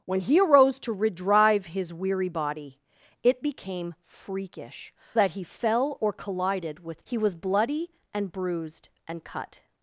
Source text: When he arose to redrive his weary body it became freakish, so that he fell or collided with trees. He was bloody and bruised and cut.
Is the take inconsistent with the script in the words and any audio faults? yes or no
yes